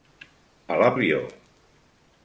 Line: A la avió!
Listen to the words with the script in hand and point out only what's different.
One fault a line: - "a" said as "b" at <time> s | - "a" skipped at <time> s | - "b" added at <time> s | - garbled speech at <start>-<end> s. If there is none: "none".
none